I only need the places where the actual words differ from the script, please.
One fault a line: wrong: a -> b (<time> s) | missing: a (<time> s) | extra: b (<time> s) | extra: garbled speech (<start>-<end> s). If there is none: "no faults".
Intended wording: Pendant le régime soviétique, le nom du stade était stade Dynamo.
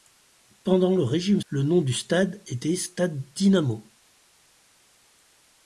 missing: soviétique (1.4 s)